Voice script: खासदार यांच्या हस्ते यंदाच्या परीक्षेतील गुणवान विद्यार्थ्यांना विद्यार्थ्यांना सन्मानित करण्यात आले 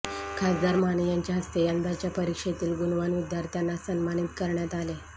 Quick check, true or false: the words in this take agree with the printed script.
false